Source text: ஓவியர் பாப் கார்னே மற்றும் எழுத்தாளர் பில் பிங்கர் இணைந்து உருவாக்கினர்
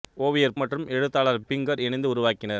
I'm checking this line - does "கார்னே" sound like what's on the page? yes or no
no